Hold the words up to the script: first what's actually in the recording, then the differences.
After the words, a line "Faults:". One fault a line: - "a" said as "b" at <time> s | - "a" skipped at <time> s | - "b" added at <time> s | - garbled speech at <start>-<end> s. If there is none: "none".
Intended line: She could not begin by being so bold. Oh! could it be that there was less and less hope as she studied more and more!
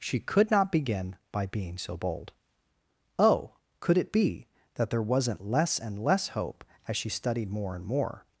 She could not begin by being so bold. Oh! could it be that there wasn't less and less hope as she studied more and more!
Faults:
- "was" said as "wasn't" at 5.0 s